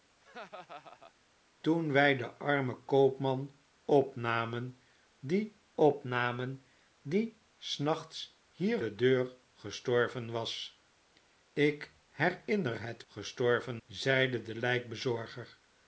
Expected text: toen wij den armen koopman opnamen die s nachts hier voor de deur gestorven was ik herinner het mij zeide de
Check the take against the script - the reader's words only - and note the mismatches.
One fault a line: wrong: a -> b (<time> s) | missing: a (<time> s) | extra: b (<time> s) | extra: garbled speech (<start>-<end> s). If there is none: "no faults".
extra: opnamen die (5.8 s)
missing: voor (8.8 s)
wrong: mij -> gestorven (13.1 s)